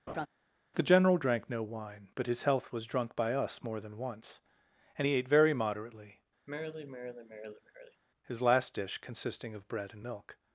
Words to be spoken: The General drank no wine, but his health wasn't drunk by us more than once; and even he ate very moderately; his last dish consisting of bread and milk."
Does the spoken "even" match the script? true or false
false